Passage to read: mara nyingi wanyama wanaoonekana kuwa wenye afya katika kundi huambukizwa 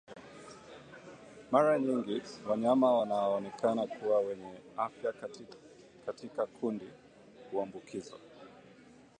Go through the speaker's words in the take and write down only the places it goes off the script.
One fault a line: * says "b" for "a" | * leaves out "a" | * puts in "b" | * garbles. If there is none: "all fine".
all fine